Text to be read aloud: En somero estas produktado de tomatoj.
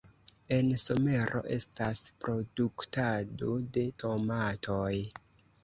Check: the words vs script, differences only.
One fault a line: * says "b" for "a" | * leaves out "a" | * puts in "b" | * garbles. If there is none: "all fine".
all fine